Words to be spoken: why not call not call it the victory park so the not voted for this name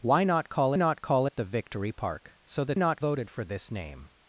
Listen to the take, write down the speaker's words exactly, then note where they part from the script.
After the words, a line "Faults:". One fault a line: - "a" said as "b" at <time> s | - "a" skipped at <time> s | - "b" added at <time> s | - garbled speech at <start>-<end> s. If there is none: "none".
why not call not call it the victory park so the not voted for this name
Faults:
none